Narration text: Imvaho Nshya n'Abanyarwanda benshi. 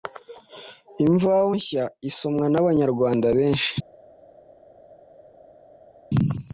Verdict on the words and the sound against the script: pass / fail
fail